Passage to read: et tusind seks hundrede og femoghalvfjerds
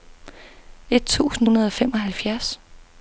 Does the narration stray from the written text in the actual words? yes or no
yes